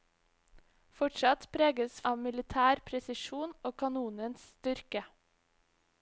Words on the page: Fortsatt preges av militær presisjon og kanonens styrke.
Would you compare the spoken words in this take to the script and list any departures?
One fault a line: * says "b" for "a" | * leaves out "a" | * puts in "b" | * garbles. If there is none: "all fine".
all fine